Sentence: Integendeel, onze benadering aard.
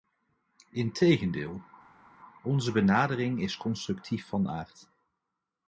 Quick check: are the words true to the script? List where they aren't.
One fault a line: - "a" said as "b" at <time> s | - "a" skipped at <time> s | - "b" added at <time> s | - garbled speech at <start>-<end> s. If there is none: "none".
- "is constructief van" added at 3.4 s